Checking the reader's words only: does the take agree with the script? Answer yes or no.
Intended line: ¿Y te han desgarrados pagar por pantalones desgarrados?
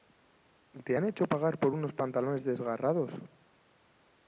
no